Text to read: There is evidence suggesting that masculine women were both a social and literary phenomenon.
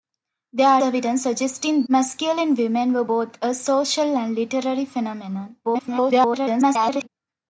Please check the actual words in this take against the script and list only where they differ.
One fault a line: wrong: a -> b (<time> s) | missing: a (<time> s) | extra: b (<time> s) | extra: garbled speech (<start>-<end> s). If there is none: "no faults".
missing: is (0.8 s)
missing: that (1.9 s)
extra: garbled speech (5.6-7.1 s)